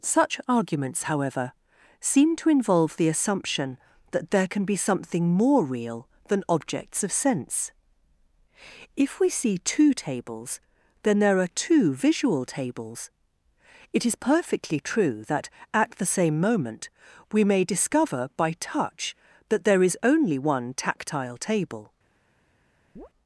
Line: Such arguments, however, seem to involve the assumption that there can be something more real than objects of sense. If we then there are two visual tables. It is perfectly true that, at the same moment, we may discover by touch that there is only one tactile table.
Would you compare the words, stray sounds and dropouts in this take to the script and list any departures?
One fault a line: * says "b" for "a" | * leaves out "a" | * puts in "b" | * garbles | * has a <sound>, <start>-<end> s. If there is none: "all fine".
* puts in "see two tables"
* has a chirp, 23.0-23.1 s